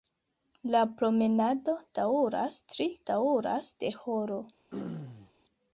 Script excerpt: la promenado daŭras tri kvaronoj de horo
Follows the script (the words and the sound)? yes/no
no